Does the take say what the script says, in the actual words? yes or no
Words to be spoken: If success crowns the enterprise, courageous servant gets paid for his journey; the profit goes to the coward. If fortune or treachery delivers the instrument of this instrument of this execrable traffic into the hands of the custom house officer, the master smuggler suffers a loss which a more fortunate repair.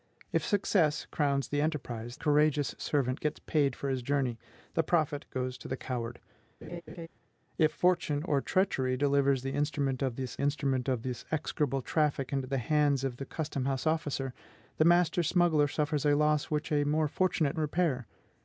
yes